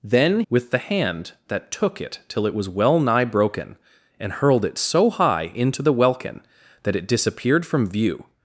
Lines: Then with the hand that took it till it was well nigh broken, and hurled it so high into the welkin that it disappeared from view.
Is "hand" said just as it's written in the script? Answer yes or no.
yes